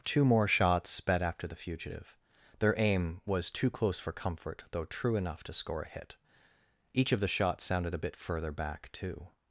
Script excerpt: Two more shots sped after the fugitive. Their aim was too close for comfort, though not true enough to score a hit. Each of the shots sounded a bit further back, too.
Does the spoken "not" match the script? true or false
false